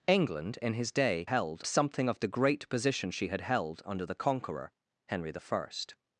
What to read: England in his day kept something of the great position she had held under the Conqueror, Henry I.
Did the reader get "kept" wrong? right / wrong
wrong